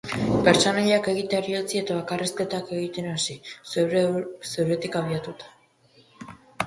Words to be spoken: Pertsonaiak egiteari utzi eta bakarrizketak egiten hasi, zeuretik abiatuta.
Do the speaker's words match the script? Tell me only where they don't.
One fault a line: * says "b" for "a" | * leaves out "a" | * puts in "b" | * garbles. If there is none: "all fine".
all fine